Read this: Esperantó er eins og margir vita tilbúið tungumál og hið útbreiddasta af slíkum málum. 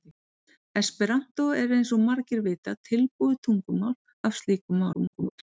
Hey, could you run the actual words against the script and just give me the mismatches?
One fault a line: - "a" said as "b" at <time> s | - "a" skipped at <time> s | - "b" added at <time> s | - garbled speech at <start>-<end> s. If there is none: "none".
- "og hið útbreiddasta" skipped at 3.9 s
- garbled speech at 4.9-5.4 s